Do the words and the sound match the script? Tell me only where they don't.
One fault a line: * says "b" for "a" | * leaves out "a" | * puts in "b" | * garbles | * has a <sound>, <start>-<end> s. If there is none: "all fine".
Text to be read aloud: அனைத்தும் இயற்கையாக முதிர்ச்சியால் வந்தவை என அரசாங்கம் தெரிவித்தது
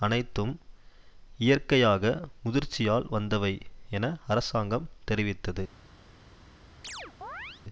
* has a chirp, 6.8-7.6 s